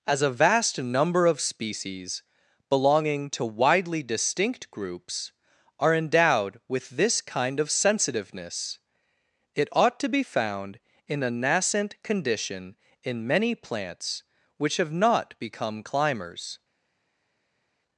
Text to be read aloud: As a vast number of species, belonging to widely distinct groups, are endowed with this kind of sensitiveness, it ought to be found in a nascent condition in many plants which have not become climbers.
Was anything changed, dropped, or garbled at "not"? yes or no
no